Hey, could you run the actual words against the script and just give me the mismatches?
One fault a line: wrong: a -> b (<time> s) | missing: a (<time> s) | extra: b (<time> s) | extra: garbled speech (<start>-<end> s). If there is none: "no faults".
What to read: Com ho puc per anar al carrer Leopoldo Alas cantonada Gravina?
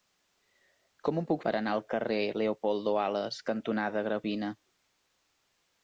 no faults